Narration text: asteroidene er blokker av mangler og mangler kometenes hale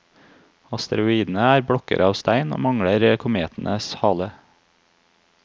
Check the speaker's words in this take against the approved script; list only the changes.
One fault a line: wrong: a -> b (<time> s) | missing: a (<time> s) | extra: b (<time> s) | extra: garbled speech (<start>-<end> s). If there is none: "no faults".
wrong: mangler -> stein (2.2 s)